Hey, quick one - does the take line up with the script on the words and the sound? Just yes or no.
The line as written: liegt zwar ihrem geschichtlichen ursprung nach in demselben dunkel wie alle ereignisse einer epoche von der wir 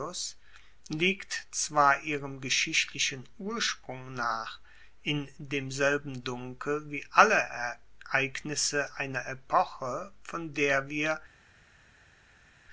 yes